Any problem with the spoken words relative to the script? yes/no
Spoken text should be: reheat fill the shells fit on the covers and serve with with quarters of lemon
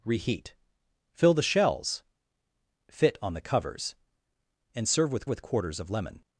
no